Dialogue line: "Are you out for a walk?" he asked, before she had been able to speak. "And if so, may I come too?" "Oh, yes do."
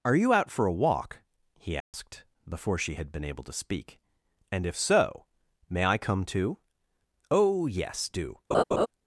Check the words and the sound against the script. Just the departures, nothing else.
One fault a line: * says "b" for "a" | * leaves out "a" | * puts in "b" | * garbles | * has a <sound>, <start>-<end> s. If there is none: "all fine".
* has a dropout, 1.8-1.9 s
* has a laugh, 8.5-8.9 s